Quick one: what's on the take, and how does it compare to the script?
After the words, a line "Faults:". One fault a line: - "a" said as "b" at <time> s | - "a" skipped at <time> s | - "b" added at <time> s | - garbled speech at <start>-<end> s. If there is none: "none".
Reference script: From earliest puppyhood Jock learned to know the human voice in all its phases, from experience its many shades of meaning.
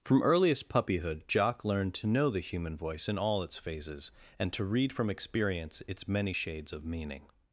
From earliest puppyhood Jock learned to know the human voice in all its phases, and to read from experience its many shades of meaning.
Faults:
- "and to read" added at 4.4 s